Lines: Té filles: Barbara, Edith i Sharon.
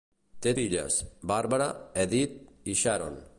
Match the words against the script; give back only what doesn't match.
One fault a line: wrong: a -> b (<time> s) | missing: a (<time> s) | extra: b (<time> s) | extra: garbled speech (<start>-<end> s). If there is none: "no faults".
no faults